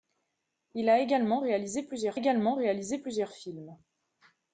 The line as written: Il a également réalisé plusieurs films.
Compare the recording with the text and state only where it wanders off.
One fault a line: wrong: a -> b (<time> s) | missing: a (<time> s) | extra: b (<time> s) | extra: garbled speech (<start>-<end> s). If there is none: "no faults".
extra: également réalisé plusieurs (2.1 s)